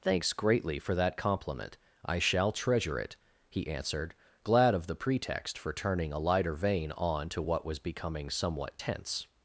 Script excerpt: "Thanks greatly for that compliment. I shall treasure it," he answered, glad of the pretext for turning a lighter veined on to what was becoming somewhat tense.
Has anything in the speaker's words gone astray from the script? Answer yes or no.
yes